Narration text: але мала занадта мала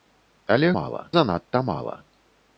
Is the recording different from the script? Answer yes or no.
no